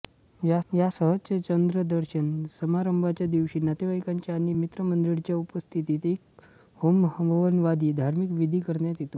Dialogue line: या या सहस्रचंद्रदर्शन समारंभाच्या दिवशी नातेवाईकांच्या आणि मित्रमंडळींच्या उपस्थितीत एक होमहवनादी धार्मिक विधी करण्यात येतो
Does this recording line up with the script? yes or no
yes